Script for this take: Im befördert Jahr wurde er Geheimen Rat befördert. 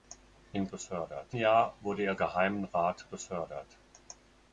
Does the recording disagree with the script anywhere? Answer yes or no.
no